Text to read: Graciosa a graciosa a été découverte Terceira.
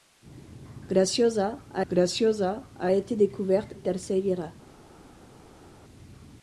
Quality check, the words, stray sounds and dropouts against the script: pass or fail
pass